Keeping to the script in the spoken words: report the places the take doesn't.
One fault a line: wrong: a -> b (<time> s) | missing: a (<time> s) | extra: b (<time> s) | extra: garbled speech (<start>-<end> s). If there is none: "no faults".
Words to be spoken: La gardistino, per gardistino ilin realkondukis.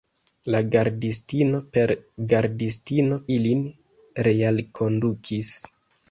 no faults